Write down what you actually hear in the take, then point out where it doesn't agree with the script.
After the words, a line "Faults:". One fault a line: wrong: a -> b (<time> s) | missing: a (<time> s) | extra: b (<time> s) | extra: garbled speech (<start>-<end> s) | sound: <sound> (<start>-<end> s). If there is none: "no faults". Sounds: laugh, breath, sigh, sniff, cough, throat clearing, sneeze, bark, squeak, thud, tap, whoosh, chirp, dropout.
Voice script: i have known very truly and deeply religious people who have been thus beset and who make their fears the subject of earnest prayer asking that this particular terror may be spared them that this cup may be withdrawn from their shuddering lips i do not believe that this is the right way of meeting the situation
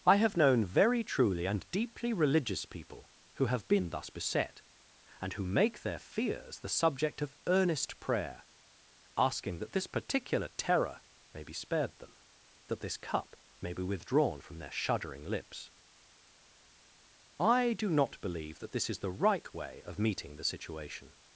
i have known very truly and deeply religious people who have been thus beset and who make their fears the subject of earnest prayer asking that this particular terror may be spared them that this cup may be withdrawn from their shuddering lips i do not believe that this is the right way of meeting the situation
Faults:
no faults